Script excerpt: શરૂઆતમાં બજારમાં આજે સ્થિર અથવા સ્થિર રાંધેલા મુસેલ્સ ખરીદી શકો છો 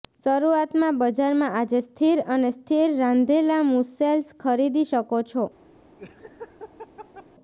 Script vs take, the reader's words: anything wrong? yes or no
yes